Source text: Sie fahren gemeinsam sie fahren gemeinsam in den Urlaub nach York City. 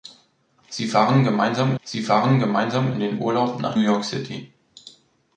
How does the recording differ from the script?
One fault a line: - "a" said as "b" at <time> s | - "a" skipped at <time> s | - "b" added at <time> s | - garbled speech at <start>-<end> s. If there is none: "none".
none